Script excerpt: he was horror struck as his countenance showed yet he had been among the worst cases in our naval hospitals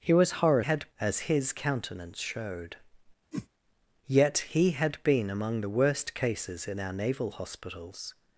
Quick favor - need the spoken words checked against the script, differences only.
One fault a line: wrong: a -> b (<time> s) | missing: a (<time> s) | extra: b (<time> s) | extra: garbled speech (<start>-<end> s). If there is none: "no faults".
wrong: struck -> had (0.6 s)